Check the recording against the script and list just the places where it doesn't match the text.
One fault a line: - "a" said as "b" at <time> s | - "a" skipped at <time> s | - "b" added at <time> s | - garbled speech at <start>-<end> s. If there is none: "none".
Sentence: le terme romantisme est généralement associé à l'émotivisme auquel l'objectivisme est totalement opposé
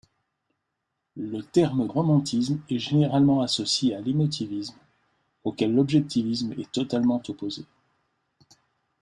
none